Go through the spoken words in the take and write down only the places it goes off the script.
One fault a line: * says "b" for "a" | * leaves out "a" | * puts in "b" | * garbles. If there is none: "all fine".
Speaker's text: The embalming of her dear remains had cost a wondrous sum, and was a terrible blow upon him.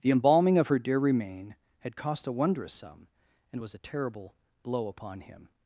* says "remain" for "remains"